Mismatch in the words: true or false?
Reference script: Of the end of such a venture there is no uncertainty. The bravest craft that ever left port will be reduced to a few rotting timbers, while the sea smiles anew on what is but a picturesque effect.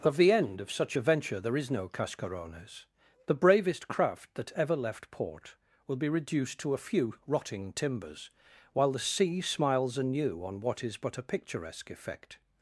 true